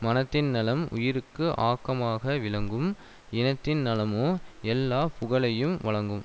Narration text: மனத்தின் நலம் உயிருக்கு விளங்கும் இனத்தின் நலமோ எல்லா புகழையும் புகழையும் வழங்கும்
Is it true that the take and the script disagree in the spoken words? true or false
true